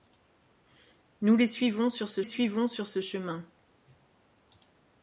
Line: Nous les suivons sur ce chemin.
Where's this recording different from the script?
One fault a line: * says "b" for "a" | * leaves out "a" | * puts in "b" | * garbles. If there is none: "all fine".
* puts in "suivons sur ce"